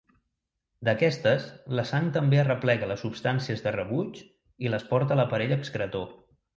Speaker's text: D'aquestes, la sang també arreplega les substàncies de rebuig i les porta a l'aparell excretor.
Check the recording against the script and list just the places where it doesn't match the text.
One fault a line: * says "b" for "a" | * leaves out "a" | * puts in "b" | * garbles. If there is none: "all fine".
all fine